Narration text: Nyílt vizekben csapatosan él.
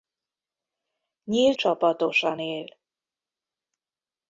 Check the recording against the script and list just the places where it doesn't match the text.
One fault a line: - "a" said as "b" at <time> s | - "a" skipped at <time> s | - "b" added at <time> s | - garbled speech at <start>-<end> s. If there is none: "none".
- "vizekben" skipped at 1.6 s